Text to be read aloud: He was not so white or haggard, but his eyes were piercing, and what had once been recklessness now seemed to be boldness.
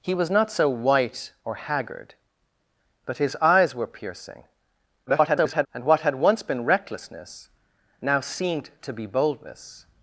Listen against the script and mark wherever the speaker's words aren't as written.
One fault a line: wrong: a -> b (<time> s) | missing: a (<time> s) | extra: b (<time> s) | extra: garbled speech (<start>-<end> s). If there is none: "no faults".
extra: garbled speech (5.1-5.7 s)